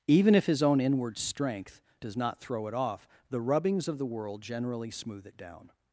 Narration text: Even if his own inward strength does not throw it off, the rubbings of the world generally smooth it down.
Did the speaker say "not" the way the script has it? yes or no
yes